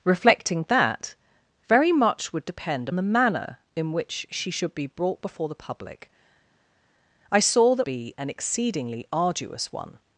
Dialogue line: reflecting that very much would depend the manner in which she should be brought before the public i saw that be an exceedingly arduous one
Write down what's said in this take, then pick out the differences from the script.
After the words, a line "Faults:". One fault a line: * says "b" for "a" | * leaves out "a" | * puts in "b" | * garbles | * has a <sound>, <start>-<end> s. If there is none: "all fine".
reflecting that very much would depend the manner in which she should be brought before the public i saw that be an exceedingly arduous one
Faults:
all fine